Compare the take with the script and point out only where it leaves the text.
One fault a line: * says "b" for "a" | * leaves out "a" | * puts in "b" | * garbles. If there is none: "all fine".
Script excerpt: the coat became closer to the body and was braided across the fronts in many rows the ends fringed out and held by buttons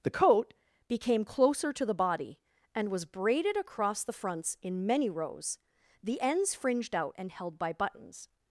all fine